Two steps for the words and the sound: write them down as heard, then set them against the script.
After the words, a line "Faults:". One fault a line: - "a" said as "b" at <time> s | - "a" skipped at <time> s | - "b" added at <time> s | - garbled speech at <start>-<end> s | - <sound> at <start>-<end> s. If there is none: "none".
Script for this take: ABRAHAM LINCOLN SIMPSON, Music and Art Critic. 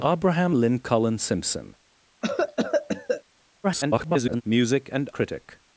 ABRAHAM LINCOLN SIMPSON, [garbled] Music and Critic.
Faults:
- cough at 2.2-3.2 s
- garbled speech at 3.6-4.4 s
- "Art" skipped at 5.1 s